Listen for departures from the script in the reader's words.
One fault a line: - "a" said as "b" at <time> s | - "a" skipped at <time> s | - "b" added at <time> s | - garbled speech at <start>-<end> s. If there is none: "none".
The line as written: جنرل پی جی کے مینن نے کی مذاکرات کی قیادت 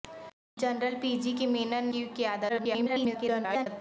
- "نے کی مذاکرات" skipped at 1.9 s
- garbled speech at 2.5-3.7 s